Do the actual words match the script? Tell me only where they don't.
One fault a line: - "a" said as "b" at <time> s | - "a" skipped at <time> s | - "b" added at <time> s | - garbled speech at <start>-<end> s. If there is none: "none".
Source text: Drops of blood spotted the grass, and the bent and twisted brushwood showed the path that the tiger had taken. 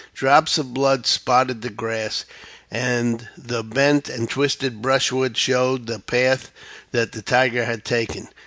none